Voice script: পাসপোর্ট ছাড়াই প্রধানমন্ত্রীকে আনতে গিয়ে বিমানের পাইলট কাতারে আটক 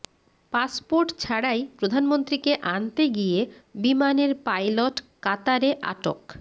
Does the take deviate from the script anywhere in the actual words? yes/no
no